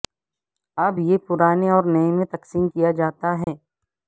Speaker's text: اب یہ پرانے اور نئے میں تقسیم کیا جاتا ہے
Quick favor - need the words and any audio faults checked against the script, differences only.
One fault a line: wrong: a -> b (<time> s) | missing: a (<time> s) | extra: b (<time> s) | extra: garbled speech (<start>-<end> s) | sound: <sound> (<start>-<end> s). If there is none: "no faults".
sound: dropout (3.4-3.5 s)